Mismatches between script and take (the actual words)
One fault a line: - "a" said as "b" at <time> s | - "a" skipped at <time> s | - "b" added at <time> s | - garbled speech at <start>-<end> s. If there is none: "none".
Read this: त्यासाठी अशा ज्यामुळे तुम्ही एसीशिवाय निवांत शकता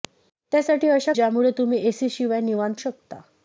none